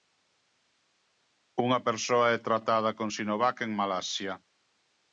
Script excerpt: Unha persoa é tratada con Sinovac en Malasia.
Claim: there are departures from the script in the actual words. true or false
false